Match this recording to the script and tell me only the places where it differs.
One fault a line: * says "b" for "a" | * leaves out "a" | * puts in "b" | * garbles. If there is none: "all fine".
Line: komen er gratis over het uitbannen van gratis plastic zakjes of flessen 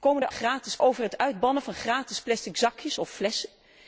all fine